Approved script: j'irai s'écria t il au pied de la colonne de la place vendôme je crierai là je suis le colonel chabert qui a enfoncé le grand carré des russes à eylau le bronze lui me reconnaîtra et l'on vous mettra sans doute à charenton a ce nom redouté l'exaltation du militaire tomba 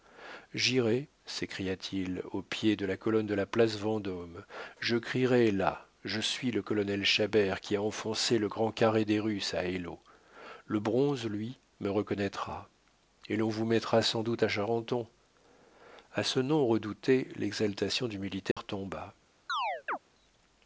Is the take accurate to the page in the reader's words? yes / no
yes